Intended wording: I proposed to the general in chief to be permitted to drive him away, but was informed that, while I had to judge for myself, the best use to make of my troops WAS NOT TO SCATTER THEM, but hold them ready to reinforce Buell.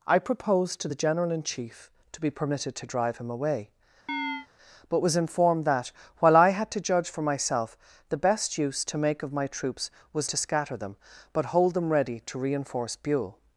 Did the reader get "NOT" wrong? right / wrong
wrong